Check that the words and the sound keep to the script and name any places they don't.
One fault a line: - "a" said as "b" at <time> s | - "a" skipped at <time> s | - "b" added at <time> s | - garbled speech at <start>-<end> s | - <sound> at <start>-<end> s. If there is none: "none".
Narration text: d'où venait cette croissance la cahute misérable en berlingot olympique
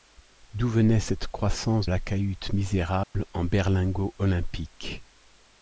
- dropout at 3.0-3.1 s